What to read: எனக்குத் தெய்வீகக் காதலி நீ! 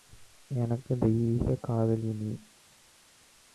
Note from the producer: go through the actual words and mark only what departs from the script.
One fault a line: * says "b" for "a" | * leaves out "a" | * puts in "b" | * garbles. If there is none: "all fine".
all fine